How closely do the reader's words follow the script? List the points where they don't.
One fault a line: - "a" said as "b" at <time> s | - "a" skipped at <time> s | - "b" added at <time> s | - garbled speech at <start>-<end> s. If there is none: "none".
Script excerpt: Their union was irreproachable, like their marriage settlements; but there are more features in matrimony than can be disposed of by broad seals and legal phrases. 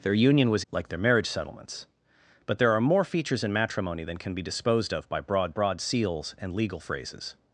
- "irreproachable" skipped at 0.6 s
- "broad" added at 5.5 s